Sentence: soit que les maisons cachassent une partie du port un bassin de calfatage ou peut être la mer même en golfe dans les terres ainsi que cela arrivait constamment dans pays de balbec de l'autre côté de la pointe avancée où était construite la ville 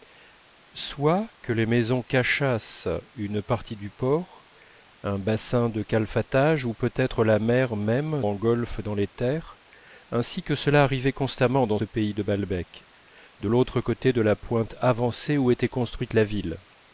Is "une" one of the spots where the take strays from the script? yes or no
no